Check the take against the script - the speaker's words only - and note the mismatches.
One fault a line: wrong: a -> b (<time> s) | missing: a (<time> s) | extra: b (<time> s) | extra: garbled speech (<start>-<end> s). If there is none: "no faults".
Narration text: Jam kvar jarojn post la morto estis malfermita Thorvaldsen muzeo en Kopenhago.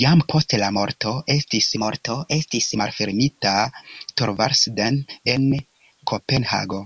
missing: kvar jarojn (0.2 s)
extra: morto estis (1.8 s)
missing: muzeo (5.0 s)